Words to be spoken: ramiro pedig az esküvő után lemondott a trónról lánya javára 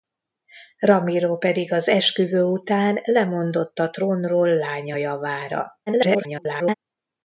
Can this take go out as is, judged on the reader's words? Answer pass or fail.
fail